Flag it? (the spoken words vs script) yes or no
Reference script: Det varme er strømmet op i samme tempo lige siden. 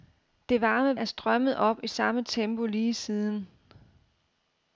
no